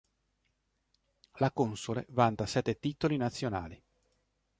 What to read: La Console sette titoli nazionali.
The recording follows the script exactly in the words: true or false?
false